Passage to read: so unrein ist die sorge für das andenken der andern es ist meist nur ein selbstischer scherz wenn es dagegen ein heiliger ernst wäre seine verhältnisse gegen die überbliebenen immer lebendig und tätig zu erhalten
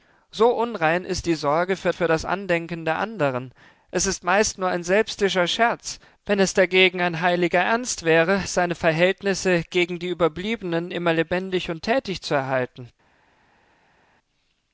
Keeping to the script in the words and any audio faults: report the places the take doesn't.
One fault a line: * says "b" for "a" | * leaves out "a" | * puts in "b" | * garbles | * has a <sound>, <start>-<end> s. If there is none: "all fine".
* puts in "für"